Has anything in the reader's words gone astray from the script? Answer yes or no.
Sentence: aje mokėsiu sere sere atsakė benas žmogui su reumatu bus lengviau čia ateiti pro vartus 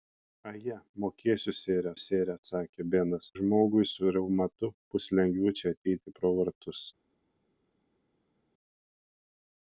no